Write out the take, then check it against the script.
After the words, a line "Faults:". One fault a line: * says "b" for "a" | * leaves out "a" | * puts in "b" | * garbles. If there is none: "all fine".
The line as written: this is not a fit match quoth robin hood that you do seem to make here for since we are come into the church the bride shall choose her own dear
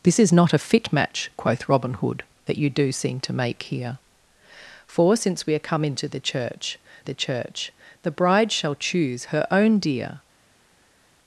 this is not a fit match quoth robin hood that you do seem to make here for since we are come into the church the church the bride shall choose her own dear
Faults:
* puts in "church the"